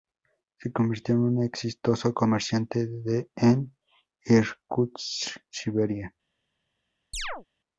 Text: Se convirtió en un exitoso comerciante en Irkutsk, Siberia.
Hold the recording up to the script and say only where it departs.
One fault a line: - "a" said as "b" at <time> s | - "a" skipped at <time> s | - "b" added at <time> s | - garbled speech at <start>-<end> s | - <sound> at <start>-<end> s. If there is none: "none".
- chirp at 7.1-7.5 s